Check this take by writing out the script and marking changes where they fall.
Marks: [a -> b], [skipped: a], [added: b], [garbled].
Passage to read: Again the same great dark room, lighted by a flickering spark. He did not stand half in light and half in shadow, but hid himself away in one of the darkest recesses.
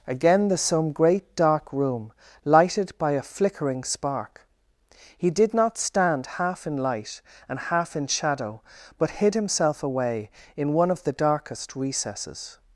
Again the [same -> some] great dark room, lighted by a flickering spark. He did not stand half in light and half in shadow, but hid himself away in one of the darkest recesses.